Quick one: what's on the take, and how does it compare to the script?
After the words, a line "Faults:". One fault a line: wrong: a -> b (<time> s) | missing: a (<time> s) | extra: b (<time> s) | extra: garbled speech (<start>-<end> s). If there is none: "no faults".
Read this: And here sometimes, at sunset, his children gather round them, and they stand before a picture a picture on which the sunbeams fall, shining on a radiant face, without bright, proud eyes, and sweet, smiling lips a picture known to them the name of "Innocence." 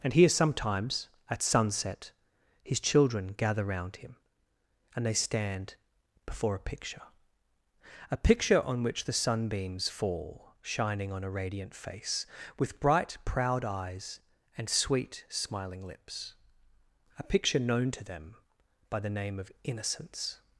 And here sometimes, at sunset, his children gather round him, and they stand before a picture a picture on which the sunbeams fall, shining on a radiant face, with bright, proud eyes, and sweet, smiling lips a picture known to them by the name of "Innocence."
Faults:
wrong: them -> him (4.0 s)
wrong: without -> with (12.6 s)
extra: by (18.9 s)